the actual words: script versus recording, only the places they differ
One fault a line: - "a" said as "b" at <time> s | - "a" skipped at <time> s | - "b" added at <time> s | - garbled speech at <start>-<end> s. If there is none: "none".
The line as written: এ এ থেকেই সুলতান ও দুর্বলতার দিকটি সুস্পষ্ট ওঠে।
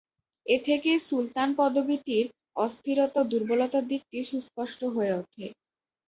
- "এ" skipped at 0.6 s
- "পদবীটির অস্থিরতা" added at 1.6 s
- "হয়ে" added at 4.9 s